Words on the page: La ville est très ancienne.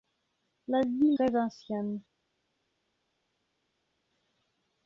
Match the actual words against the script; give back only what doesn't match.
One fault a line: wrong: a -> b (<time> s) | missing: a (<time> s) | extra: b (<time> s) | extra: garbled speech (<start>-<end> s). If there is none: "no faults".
missing: est (1.2 s)